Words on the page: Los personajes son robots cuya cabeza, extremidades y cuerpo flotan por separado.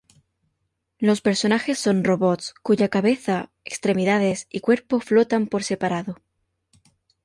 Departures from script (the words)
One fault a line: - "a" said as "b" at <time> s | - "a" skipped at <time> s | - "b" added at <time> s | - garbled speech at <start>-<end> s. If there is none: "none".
none